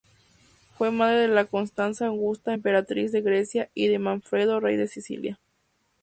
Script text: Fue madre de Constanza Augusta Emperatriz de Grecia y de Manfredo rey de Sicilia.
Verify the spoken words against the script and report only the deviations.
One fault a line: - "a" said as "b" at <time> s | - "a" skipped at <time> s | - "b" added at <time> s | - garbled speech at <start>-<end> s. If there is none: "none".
none